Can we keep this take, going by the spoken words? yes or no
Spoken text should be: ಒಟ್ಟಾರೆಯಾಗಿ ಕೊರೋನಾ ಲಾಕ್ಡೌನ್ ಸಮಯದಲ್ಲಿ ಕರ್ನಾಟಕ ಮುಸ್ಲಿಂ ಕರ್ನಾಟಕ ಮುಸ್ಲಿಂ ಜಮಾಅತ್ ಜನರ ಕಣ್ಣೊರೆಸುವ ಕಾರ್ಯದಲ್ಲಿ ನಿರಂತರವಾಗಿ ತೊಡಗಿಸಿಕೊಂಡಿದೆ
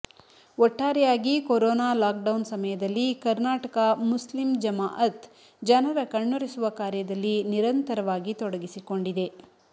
no